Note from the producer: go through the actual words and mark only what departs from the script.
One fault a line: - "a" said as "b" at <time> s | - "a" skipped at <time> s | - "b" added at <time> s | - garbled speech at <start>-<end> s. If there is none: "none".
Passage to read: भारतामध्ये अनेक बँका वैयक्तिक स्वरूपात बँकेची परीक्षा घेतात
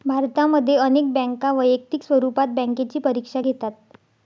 none